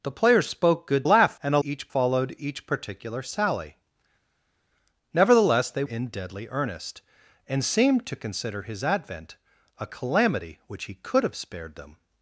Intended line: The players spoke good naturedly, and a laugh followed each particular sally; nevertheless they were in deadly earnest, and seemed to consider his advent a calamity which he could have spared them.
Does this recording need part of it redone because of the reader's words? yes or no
yes